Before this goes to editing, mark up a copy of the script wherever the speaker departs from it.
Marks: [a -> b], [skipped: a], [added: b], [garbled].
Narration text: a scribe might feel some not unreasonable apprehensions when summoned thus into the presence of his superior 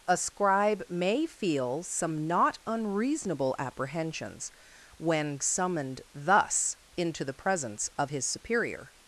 a scribe [might -> may] feel some not unreasonable apprehensions when summoned thus into the presence of his superior